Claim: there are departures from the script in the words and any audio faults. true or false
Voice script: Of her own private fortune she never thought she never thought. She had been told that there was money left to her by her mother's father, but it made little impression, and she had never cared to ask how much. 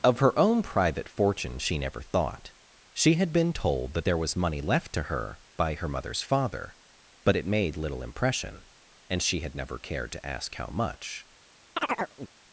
true